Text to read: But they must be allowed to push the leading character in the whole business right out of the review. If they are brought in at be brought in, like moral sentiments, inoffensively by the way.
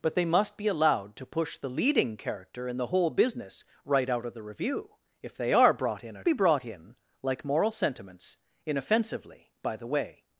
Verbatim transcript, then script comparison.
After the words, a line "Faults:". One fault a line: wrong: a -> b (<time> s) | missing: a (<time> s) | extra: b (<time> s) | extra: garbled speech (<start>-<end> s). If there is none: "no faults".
But they must be allowed to push the leading character in the whole business right out of the review. If they are brought in at be brought in, like moral sentiments, inoffensively by the way.
Faults:
no faults